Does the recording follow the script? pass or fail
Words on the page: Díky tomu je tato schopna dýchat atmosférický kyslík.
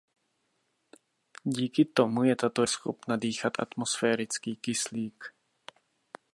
pass